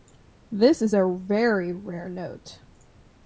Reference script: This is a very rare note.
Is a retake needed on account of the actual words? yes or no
no